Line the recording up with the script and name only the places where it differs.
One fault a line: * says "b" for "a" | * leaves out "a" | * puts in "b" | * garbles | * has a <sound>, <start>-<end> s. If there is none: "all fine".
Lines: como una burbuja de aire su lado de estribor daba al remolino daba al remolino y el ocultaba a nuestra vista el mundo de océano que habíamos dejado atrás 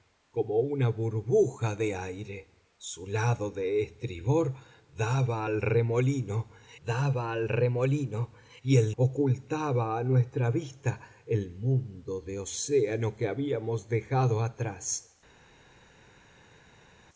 all fine